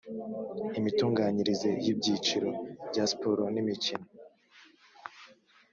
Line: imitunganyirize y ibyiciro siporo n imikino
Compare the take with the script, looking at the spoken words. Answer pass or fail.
fail